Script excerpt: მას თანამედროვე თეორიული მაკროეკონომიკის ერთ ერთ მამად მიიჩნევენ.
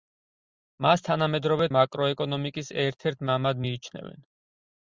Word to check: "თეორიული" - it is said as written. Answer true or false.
false